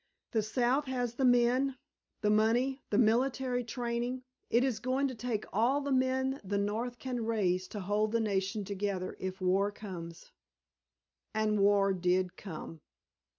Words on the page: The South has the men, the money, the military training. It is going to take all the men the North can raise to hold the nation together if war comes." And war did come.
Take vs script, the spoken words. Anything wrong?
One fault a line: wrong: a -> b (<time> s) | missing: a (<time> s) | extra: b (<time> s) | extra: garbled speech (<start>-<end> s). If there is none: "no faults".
no faults